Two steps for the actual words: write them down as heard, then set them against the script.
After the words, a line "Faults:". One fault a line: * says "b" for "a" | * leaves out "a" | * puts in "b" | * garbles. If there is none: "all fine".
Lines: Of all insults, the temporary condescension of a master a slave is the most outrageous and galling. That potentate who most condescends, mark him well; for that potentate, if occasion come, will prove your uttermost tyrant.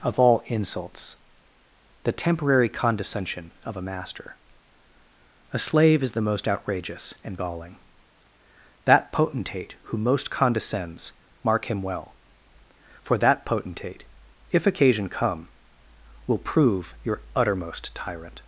Of all insults, the temporary condescension of a master a slave is the most outrageous and galling. That potentate who most condescends, mark him well; for that potentate, if occasion come, will prove your uttermost tyrant.
Faults:
all fine